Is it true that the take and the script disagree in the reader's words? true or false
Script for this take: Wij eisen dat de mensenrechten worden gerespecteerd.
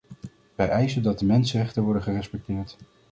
false